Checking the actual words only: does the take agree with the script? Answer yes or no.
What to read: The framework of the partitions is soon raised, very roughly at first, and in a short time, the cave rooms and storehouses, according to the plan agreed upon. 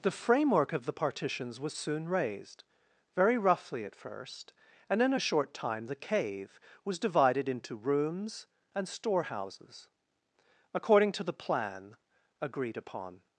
no